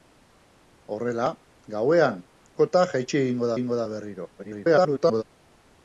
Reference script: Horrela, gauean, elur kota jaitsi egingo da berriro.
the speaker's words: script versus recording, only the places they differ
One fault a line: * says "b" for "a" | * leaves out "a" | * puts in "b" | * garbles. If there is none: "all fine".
* leaves out "elur"
* puts in "egingo"
* garbles